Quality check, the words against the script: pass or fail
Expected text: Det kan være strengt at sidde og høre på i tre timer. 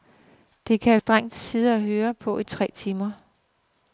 fail